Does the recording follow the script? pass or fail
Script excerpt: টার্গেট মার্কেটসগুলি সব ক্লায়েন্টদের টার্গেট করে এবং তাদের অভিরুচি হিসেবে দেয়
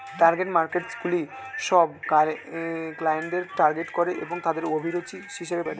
pass